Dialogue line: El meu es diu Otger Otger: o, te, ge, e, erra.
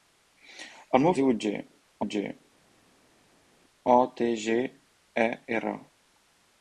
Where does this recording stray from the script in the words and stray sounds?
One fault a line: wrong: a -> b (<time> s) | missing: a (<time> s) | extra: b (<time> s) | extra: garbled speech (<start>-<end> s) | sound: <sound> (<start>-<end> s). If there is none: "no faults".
no faults